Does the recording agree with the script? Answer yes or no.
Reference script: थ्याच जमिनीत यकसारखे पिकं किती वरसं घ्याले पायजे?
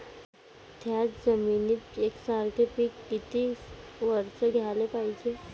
yes